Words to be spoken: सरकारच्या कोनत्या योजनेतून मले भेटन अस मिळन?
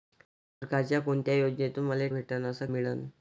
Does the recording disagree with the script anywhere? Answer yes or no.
no